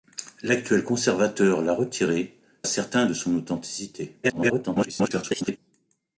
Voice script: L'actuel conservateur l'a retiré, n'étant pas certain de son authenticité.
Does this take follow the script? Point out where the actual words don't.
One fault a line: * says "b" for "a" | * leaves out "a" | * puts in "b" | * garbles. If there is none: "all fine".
* leaves out "n'étant pas"
* garbles